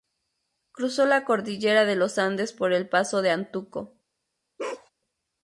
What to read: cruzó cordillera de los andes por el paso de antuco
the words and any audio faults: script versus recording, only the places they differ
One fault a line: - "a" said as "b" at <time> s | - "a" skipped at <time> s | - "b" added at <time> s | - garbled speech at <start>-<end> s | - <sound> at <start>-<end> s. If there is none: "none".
- "la" added at 1.1 s
- bark at 4.6-4.9 s